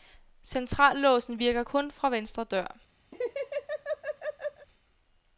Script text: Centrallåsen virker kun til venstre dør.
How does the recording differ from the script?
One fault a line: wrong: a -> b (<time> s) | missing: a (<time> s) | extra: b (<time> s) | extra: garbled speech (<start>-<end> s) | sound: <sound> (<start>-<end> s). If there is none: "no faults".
wrong: til -> fra (1.9 s)
sound: laugh (3.1-4.7 s)